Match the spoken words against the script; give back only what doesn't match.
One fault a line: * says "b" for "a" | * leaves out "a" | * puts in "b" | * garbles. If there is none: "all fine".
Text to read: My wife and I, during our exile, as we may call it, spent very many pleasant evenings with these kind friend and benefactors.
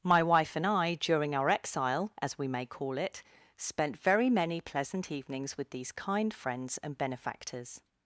* says "friends" for "friend"